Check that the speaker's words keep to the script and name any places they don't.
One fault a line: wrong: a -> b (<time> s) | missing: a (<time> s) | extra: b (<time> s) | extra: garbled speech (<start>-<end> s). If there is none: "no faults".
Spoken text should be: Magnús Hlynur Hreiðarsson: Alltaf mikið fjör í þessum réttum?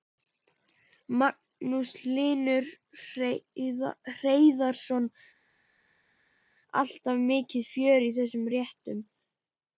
no faults